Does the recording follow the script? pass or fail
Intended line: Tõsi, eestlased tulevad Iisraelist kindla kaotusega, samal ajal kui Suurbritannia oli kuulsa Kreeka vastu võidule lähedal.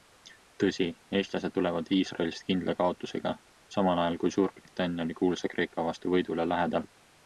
pass